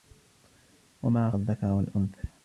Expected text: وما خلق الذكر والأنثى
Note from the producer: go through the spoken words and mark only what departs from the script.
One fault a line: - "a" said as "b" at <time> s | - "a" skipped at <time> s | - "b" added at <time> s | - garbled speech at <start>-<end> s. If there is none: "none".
- "خلق" skipped at 1.3 s